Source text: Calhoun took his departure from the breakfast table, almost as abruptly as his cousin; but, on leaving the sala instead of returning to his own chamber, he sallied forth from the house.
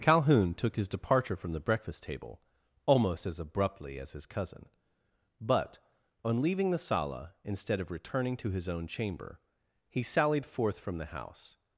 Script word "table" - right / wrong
right